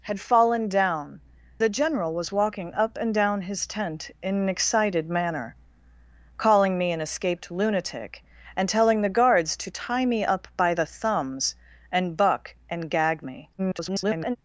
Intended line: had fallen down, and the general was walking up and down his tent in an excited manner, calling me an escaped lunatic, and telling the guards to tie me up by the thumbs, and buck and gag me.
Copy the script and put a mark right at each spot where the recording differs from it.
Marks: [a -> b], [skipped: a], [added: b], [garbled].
had fallen down, [skipped: and] the general was walking up and down his tent in an excited manner, calling me an escaped lunatic, and telling the guards to tie me up by the thumbs, and buck and gag me. [garbled]